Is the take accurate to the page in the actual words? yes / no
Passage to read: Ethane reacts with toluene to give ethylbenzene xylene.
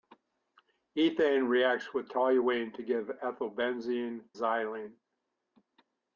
yes